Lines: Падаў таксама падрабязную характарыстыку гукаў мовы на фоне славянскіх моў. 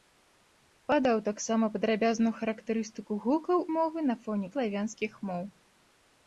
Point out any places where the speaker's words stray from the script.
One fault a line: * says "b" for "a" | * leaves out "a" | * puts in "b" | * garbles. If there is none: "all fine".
all fine